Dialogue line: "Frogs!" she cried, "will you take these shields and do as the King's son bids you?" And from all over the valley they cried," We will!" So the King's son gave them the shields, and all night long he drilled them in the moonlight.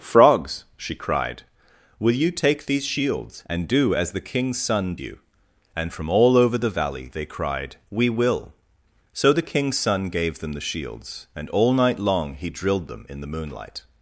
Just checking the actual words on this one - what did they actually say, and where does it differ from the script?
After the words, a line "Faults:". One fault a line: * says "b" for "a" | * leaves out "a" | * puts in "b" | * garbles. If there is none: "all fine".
"Frogs!" she cried, "will you take these shields and do as the King's son you?" And from all over the valley they cried," We will!" So the King's son gave them the shields, and all night long he drilled them in the moonlight.
Faults:
* leaves out "bids"